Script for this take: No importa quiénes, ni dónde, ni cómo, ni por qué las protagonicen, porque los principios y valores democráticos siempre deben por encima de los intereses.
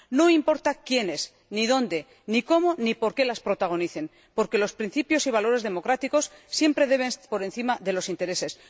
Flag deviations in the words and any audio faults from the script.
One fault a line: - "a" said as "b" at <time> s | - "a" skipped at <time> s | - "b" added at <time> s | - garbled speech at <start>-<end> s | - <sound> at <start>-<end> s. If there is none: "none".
none